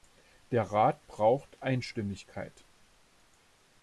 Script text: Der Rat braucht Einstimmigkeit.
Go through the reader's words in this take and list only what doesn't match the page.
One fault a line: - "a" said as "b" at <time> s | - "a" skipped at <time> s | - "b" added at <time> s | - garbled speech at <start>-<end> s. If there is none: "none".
none